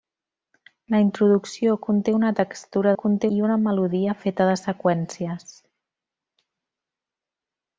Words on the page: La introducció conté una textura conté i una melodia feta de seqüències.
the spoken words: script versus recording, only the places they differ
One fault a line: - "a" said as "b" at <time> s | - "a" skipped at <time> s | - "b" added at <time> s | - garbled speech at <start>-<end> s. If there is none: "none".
none